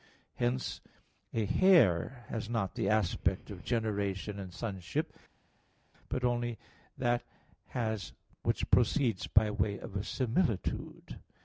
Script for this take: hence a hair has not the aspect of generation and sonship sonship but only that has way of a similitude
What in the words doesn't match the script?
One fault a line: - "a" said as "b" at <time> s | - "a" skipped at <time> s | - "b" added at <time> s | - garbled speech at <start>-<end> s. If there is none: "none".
- "sonship" skipped at 5.1 s
- "which proceeds by" added at 8.4 s